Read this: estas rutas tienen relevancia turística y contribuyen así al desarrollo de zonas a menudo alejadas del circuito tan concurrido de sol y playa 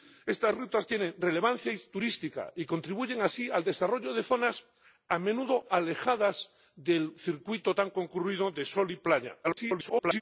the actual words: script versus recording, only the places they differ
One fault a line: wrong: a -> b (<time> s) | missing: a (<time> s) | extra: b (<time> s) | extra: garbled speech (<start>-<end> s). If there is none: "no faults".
extra: garbled speech (9.4-10.2 s)